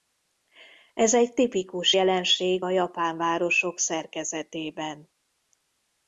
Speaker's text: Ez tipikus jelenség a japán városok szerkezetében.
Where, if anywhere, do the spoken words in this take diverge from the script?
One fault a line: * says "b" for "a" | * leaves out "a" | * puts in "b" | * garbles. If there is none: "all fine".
* puts in "egy"